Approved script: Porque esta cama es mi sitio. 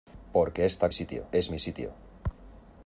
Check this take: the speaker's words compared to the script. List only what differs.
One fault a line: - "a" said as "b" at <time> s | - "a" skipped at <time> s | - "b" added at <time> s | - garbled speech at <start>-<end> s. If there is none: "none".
- "cama" said as "sitio" at 0.9 s